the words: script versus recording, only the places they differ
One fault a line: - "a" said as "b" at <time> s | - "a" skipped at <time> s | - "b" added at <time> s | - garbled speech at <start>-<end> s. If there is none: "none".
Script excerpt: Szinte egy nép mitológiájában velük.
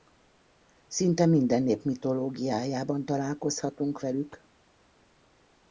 - "egy" said as "minden" at 1.2 s
- "találkozhatunk" added at 3.0 s